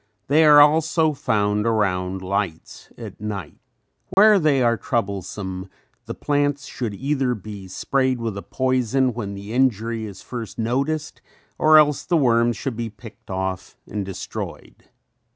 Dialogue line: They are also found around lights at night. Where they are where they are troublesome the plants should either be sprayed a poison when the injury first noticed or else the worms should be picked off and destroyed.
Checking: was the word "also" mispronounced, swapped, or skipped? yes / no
no